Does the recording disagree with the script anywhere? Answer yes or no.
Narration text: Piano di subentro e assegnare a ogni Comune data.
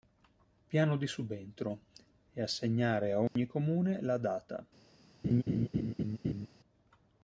yes